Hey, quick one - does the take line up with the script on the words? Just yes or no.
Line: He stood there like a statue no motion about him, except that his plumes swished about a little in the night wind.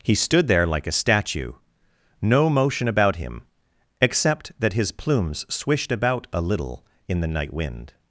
yes